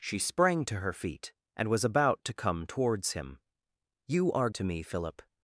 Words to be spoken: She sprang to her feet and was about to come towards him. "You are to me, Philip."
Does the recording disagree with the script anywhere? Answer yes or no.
no